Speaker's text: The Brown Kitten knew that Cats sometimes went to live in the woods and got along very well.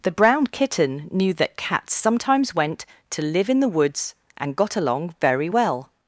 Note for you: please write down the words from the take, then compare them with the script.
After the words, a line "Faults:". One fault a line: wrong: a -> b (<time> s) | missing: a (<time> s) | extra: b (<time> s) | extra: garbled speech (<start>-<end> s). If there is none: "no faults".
The Brown Kitten knew that Cats sometimes went to live in the woods and got along very well.
Faults:
no faults